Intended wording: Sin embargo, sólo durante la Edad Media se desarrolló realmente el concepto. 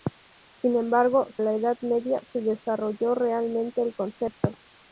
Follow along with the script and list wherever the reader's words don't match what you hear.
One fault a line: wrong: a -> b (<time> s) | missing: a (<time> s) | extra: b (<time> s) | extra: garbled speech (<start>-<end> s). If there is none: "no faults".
missing: sólo durante (1.3 s)